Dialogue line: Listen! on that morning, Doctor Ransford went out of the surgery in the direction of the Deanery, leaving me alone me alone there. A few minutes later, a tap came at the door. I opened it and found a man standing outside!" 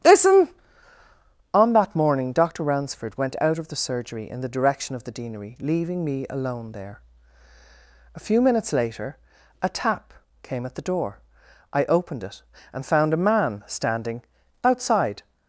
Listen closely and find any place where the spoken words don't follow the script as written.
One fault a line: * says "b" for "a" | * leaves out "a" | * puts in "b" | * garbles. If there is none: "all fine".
* leaves out "me alone"